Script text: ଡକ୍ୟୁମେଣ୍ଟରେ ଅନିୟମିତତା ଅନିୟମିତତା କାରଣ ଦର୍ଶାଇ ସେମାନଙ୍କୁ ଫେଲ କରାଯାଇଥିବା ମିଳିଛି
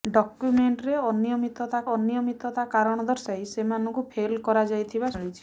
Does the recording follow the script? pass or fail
pass